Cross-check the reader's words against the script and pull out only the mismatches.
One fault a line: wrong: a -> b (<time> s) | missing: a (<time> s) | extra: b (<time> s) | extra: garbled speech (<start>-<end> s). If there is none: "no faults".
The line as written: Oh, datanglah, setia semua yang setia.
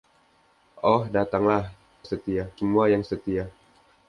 no faults